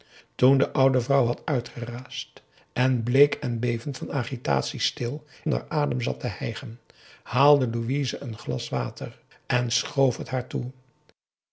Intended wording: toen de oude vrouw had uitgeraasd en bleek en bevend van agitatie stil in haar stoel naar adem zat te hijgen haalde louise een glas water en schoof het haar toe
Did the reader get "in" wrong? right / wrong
wrong